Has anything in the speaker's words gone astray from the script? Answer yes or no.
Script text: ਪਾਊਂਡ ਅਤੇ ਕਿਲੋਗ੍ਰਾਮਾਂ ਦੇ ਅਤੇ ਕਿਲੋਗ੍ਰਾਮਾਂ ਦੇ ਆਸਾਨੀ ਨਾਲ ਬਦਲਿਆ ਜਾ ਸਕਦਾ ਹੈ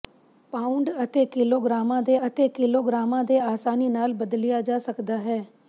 no